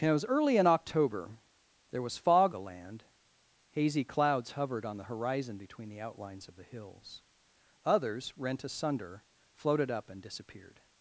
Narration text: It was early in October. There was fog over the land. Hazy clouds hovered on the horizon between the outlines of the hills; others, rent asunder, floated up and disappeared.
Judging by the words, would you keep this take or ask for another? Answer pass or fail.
fail